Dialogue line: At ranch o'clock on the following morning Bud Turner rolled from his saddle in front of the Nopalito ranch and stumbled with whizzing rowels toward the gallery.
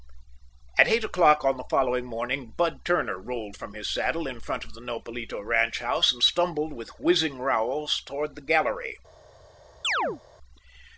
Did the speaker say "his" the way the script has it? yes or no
yes